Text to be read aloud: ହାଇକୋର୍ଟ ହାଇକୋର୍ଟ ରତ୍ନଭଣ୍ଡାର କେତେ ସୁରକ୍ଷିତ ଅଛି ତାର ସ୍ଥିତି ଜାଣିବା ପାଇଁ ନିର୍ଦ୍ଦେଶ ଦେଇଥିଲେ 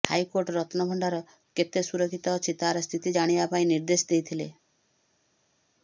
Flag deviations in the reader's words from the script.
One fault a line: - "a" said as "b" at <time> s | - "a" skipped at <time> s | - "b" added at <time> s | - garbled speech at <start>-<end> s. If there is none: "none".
- "ହାଇକୋର୍ଟ" skipped at 0.5 s